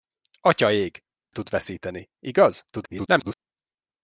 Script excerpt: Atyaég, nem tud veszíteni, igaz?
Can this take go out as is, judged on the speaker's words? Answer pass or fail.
fail